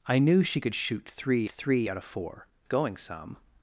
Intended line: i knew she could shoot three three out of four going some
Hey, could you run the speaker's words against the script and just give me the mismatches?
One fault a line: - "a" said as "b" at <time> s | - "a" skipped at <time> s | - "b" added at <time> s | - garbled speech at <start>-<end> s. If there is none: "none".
none